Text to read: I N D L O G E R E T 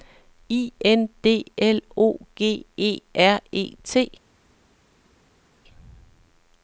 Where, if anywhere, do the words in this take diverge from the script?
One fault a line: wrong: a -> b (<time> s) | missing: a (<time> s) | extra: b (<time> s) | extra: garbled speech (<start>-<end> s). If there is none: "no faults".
no faults